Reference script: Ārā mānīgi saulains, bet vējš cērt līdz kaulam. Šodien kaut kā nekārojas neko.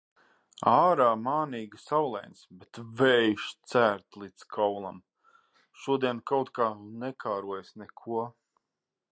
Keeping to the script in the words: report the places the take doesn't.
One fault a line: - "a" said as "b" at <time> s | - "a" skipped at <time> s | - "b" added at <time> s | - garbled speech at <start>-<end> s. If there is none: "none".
none